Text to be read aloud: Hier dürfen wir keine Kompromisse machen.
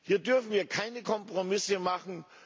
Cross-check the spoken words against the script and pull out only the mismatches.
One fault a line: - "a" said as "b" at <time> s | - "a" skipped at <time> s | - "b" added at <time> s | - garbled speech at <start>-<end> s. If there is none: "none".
none